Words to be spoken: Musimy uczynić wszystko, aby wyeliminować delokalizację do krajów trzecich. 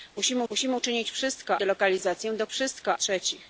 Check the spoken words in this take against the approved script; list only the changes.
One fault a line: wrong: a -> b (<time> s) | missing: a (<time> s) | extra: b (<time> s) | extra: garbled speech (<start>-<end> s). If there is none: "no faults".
extra: musimy (0.5 s)
missing: aby wyeliminować (1.6 s)
wrong: krajów -> wszystko (2.5 s)